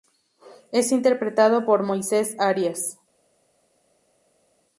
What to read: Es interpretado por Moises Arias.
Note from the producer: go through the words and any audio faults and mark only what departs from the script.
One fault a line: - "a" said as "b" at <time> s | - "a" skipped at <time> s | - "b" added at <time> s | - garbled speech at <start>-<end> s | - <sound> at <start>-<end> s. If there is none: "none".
none